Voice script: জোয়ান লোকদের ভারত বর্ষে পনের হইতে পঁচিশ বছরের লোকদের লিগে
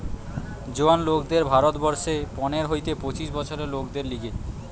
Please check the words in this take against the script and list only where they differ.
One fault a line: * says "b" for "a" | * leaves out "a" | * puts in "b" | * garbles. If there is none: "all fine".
all fine